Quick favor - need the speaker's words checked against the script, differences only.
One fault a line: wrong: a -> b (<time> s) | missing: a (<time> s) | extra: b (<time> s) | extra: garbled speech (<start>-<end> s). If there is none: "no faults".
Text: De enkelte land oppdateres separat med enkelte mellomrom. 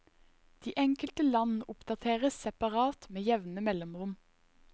wrong: enkelte -> jevne (3.2 s)